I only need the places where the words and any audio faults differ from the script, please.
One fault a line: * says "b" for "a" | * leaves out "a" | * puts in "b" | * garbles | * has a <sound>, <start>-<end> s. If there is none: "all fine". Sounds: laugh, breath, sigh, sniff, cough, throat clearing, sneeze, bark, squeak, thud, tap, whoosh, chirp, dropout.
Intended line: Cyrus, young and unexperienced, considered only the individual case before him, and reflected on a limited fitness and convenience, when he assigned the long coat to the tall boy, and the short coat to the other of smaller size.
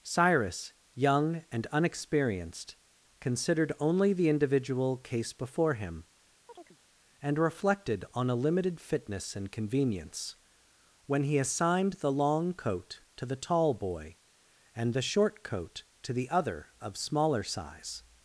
* has a chirp, 6.5-6.8 s